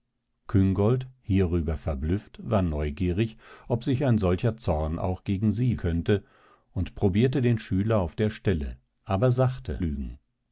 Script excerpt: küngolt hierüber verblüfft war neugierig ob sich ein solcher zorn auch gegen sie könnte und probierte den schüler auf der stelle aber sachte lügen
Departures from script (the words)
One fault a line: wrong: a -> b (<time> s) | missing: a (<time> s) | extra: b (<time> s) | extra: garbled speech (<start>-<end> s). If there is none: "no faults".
no faults